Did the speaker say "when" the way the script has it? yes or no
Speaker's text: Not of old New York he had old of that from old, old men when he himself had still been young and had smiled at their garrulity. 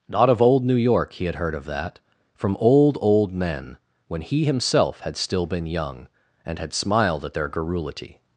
yes